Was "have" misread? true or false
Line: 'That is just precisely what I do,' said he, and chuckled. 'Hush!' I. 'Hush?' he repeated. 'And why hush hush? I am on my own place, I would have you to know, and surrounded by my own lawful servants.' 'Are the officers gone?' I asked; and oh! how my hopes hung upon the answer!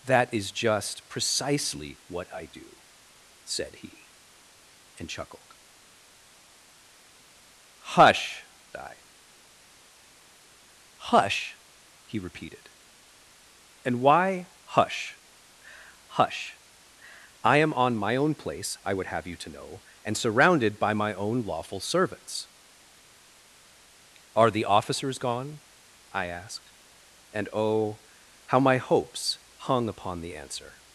false